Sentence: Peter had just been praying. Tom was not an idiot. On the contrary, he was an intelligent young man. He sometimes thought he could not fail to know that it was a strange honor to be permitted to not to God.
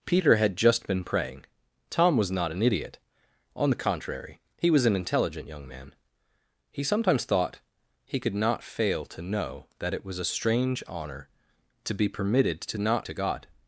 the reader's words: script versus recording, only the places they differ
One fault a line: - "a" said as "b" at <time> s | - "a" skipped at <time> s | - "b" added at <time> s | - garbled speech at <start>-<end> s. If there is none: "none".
none